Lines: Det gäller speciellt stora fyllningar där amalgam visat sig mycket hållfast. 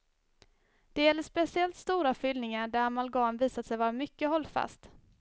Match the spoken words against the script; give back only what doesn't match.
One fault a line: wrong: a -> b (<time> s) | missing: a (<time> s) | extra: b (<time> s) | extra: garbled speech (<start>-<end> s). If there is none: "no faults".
extra: vara (3.8 s)